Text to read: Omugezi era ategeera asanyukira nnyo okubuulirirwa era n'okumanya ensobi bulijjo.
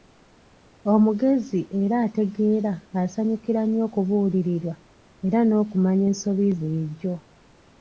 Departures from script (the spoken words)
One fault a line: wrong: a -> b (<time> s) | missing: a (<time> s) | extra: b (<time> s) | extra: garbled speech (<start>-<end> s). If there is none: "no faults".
no faults